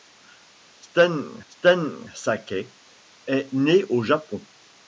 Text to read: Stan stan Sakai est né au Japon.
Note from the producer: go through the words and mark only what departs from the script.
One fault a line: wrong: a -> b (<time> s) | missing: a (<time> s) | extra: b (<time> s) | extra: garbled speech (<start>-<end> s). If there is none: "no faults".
no faults